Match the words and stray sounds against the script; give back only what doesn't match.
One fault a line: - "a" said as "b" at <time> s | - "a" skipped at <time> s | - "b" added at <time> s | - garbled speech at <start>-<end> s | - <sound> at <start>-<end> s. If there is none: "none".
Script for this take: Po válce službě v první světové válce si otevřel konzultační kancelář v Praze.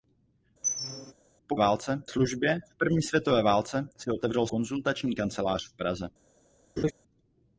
- squeak at 0.6-1.1 s
- laugh at 6.8-6.9 s